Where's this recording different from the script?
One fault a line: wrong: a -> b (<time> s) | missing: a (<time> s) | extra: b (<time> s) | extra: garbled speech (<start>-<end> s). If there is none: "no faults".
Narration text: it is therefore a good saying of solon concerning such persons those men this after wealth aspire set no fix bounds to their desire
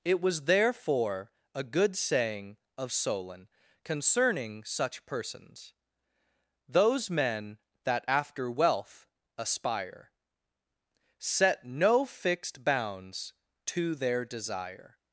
wrong: is -> was (0.2 s)
wrong: this -> that (7.8 s)
wrong: fix -> fixed (12.0 s)